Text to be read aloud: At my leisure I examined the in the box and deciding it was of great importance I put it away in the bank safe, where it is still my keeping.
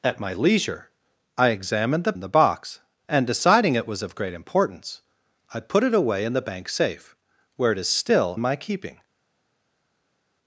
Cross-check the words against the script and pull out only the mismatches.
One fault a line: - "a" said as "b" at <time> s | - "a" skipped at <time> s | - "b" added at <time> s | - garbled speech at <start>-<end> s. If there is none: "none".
none